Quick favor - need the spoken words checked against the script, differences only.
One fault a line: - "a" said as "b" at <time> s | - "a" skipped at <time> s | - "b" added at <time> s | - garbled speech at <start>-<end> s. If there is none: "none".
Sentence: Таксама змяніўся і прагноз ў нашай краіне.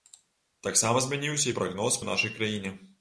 none